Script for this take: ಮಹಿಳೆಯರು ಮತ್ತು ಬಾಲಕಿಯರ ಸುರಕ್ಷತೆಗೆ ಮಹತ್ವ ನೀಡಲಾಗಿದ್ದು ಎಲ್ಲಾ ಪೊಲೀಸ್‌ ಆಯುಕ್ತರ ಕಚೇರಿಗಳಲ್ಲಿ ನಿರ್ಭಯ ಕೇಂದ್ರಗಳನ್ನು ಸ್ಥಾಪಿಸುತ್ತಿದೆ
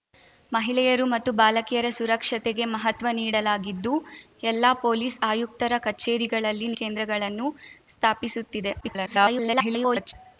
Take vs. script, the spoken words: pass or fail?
fail